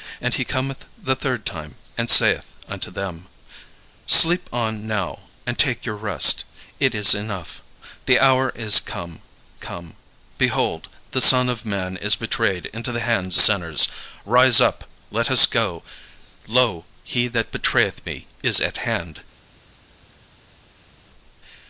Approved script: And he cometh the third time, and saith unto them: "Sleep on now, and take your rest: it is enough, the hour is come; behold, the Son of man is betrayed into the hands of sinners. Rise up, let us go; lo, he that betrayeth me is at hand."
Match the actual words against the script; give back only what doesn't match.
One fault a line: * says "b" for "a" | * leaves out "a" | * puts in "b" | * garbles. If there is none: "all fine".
* puts in "come"
* leaves out "of"